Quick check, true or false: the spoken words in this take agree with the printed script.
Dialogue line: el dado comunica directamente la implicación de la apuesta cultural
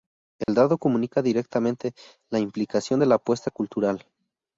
true